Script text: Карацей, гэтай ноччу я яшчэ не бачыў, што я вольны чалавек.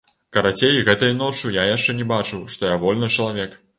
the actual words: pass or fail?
pass